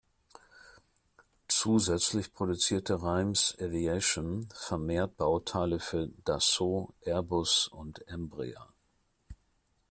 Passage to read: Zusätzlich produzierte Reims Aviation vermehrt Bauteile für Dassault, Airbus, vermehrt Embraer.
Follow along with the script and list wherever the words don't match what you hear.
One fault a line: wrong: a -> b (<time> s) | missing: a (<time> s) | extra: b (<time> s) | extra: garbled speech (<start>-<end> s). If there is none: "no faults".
wrong: vermehrt -> und (7.7 s)